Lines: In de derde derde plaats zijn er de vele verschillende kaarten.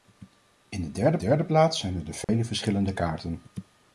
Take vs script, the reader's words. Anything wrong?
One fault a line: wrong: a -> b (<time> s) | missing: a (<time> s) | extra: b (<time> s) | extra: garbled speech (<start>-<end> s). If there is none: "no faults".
no faults